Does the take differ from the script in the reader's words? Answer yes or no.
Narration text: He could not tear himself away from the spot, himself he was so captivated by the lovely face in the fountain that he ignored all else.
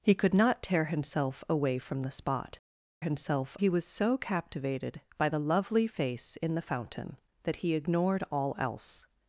no